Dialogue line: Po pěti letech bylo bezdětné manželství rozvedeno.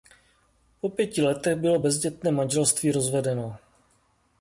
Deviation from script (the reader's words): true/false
false